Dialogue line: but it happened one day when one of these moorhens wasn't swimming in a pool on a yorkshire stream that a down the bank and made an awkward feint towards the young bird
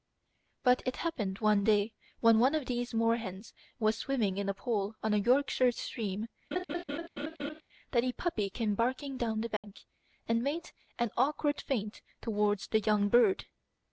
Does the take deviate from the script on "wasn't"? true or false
true